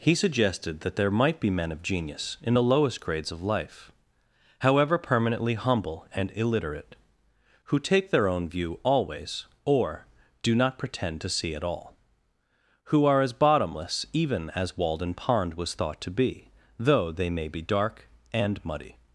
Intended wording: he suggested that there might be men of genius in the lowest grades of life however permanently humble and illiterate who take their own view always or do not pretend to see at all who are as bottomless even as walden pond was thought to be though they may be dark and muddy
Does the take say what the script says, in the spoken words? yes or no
yes